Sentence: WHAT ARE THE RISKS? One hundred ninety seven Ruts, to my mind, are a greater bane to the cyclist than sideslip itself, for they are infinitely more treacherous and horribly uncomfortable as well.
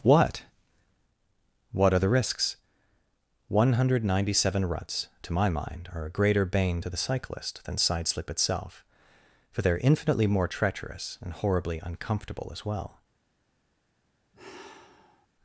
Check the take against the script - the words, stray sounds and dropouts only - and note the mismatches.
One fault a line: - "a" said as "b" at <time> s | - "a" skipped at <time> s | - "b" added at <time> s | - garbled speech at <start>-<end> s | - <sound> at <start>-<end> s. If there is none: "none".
- "wHAT" added at 1.7 s
- sigh at 14.3-15.3 s